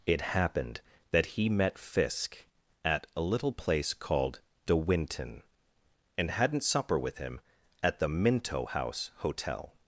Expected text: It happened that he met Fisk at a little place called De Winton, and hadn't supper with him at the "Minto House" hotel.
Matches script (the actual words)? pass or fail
pass